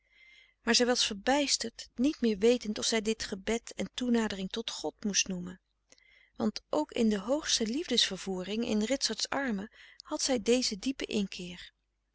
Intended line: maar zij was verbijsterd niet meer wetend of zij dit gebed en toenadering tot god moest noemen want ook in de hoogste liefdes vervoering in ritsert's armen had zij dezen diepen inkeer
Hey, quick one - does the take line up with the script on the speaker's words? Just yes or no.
yes